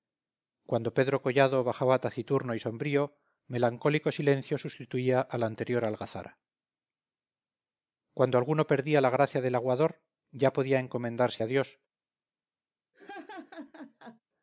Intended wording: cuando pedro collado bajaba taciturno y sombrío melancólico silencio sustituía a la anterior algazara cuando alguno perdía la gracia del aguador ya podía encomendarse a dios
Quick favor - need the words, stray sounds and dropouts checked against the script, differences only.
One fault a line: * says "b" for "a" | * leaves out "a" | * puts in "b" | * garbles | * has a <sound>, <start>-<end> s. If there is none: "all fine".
* has a laugh, 12.9-14.2 s